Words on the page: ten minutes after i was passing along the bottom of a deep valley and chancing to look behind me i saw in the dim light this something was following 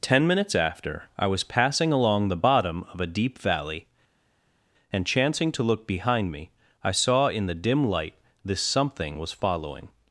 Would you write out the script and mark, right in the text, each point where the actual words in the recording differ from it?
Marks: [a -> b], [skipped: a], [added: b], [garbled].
ten minutes after i was passing along the bottom of a deep valley and chancing to look behind me i saw in the dim light this something was following